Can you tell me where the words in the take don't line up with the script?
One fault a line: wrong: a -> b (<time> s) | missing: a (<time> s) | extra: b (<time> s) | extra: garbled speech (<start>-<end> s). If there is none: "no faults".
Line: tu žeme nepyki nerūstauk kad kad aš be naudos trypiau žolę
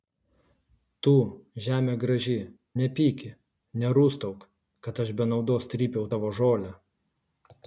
extra: graži (2.0 s)
missing: kad (5.0 s)
extra: tavo (6.1 s)